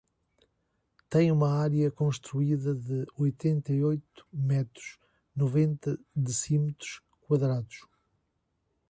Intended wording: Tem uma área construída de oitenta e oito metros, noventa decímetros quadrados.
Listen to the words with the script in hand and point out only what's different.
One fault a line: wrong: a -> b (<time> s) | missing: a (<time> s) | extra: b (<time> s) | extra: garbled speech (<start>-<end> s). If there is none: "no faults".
no faults